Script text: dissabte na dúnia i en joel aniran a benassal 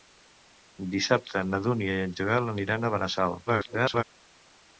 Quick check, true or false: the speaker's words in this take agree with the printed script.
false